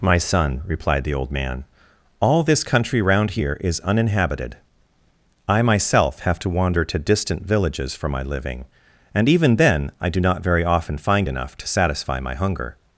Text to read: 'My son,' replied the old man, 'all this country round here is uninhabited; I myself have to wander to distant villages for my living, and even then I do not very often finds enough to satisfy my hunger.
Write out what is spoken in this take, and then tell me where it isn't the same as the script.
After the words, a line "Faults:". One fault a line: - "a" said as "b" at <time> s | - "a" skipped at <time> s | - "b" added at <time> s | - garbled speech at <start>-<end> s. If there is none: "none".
'My son,' replied the old man, 'all this country round here is uninhabited; I myself have to wander to distant villages for my living, and even then I do not very often find enough to satisfy my hunger.
Faults:
- "finds" said as "find" at 11.0 s